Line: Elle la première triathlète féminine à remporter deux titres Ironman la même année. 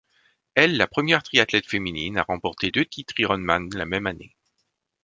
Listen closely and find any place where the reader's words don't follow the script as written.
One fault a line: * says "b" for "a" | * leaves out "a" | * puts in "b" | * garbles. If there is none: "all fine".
all fine